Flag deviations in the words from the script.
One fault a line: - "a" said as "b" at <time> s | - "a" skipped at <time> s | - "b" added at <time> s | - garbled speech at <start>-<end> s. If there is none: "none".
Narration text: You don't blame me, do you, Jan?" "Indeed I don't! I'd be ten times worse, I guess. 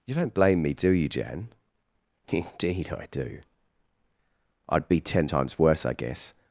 - "don't" said as "do" at 3.1 s